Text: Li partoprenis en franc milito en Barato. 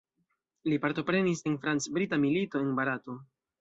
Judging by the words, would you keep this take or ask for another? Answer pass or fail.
fail